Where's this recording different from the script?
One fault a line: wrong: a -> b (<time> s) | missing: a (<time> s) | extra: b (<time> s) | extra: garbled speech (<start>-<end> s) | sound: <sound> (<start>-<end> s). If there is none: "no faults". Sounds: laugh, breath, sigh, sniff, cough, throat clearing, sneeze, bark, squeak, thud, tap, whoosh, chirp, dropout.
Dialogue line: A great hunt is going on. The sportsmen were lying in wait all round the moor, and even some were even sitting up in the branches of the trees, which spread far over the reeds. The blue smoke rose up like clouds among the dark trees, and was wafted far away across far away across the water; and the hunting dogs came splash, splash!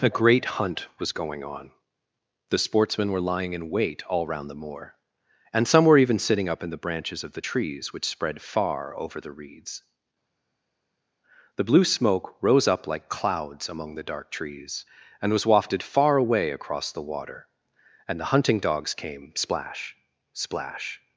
wrong: is -> was (1.0 s)
missing: even (5.7 s)
missing: far away across (16.9 s)